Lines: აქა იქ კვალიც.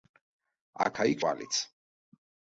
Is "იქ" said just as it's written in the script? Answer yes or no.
yes